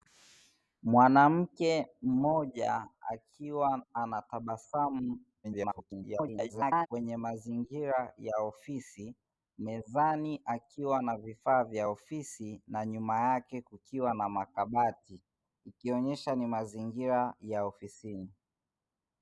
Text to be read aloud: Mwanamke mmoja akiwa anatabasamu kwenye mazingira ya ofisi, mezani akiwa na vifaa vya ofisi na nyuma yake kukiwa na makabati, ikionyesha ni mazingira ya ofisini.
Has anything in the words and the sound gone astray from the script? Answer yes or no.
yes